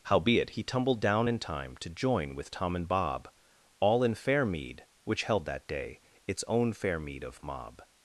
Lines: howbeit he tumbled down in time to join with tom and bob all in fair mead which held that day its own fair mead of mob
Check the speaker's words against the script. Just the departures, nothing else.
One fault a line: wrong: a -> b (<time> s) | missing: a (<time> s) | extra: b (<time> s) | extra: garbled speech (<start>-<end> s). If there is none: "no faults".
no faults